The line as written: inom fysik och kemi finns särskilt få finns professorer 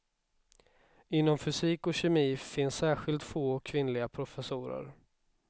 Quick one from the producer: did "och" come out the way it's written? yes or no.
yes